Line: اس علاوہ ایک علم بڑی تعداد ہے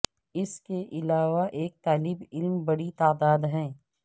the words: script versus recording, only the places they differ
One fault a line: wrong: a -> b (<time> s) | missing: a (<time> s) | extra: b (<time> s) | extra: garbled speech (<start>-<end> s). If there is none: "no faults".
extra: کے (0.6 s)
extra: طالب (1.8 s)